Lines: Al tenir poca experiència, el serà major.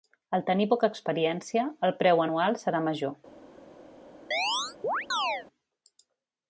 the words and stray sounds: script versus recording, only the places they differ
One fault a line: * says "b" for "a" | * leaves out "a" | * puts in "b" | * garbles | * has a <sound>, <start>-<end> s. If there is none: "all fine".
* puts in "preu anual"
* has a chirp, 4.3-5.5 s